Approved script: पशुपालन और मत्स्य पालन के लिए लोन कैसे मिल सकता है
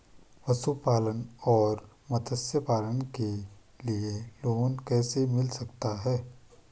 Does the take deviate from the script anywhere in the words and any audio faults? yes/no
no